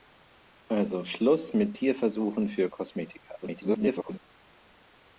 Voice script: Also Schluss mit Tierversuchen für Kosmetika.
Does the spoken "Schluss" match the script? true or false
true